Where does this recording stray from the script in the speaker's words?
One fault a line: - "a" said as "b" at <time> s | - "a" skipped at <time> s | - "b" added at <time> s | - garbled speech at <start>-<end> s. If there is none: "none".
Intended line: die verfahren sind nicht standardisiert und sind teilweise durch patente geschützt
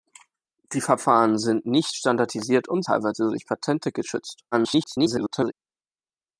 - "sind" skipped at 2.8 s
- garbled speech at 4.5-5.5 s